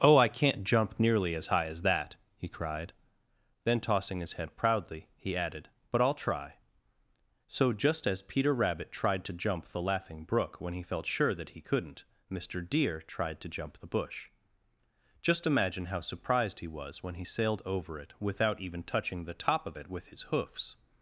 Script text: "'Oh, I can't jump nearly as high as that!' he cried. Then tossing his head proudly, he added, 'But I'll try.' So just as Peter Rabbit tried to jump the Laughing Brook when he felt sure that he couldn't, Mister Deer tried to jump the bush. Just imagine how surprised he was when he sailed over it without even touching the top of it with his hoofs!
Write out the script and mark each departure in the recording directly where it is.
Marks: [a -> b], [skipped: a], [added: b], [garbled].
"'Oh, I can't jump nearly as high as that!' he cried. Then tossing his head proudly, he added, 'But I'll try.' So just as Peter Rabbit tried to jump the Laughing Brook when he felt sure that he couldn't, Mister Deer tried to jump the bush. Just imagine how surprised he was when he sailed over it without even touching the top of it with his hoofs!